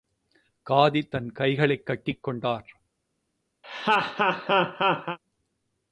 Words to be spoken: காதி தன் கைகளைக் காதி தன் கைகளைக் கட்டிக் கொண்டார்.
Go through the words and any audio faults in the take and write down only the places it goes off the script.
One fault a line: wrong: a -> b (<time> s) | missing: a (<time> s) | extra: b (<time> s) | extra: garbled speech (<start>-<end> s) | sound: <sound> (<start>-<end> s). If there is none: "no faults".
missing: காதி தன் கைகளைக் (1.9 s)
sound: laugh (3.6-5.2 s)